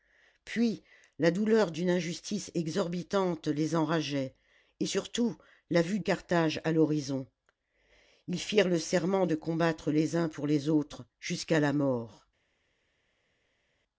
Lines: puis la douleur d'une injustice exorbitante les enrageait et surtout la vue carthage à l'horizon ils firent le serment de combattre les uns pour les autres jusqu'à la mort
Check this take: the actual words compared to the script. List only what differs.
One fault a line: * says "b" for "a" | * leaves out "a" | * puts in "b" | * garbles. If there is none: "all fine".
all fine